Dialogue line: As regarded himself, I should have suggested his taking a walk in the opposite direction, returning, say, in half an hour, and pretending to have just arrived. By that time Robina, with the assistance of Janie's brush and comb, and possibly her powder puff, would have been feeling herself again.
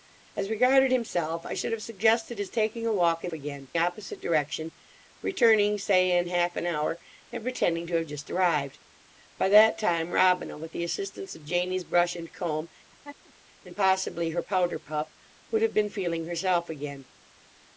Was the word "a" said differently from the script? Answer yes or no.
no